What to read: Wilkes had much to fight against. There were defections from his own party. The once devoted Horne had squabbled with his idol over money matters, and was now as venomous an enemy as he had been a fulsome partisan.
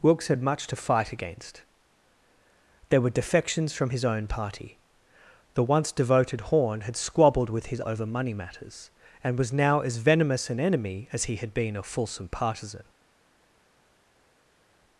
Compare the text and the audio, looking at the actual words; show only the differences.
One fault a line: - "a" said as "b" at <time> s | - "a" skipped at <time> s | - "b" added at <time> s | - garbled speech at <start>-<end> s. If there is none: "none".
- "idol" skipped at 7.8 s